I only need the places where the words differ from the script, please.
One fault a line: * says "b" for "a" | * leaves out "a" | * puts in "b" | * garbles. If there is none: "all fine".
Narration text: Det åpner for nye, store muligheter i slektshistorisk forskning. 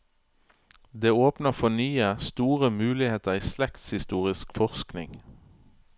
all fine